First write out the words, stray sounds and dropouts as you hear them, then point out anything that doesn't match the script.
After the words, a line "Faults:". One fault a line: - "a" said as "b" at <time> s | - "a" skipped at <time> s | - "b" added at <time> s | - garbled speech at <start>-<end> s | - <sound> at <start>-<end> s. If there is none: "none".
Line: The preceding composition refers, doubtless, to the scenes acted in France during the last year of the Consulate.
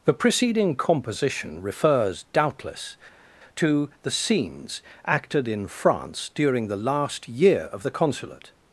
The preceding composition refers, doubtless, to the scenes acted in France during the last year of the Consulate.
Faults:
none